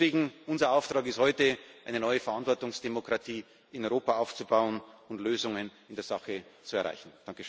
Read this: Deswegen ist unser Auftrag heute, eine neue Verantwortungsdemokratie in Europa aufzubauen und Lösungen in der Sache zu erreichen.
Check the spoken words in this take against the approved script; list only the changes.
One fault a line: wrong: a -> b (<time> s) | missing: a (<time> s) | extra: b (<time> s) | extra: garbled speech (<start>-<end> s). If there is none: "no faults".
no faults